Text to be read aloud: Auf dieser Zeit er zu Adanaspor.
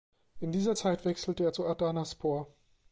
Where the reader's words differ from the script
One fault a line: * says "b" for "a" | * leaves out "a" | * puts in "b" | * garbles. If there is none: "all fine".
* says "In" for "Auf"
* puts in "wechselte"